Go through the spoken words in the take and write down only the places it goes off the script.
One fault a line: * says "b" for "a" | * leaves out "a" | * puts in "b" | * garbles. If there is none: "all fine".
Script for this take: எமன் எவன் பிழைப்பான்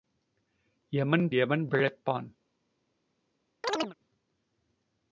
all fine